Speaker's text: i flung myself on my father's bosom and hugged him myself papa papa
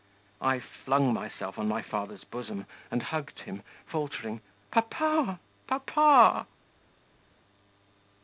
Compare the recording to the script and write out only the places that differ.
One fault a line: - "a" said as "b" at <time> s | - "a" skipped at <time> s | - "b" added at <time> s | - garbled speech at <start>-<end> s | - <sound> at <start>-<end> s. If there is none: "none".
- "myself" said as "faltering" at 3.9 s